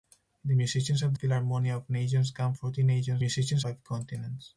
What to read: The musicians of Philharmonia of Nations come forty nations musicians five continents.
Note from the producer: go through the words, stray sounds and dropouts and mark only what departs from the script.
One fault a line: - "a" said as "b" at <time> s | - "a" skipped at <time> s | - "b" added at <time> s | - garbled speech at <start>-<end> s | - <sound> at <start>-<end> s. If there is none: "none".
none